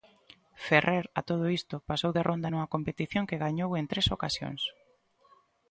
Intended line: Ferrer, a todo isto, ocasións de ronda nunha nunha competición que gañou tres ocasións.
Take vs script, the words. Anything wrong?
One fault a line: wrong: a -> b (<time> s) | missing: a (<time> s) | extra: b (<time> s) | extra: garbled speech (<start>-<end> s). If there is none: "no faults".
wrong: ocasións -> pasou (1.9 s)
missing: nunha (2.7 s)
extra: en (3.7 s)